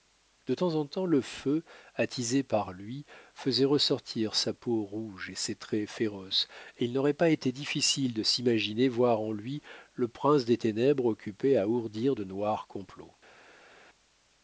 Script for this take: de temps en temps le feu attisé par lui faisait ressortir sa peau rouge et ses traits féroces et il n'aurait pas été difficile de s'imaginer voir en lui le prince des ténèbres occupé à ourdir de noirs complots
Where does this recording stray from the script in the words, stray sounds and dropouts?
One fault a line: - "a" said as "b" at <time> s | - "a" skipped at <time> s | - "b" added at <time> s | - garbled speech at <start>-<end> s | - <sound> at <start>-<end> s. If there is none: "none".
none